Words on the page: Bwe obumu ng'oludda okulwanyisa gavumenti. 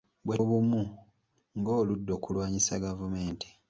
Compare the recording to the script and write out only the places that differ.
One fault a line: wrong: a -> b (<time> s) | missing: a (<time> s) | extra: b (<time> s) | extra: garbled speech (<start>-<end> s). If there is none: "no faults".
no faults